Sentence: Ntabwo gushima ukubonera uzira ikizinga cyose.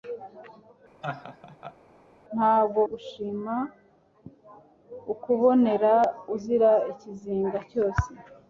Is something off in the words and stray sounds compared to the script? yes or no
yes